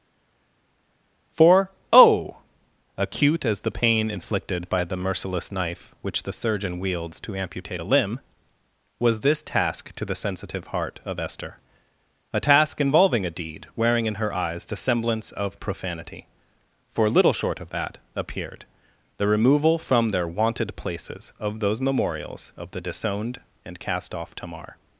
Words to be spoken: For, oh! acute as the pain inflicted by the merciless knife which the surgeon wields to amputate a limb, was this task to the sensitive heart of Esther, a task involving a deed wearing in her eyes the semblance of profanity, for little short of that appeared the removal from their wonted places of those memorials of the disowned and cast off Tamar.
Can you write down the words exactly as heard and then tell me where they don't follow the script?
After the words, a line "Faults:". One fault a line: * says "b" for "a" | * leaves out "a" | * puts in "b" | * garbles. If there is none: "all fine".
For, oh! acute as the pain inflicted by the merciless knife which the surgeon wields to amputate a limb, was this task to the sensitive heart of Esther, a task involving a deed wearing in her eyes the semblance of profanity, for little short of that appeared the removal from their wonted places of those memorials of the disowned and cast off Tamar.
Faults:
all fine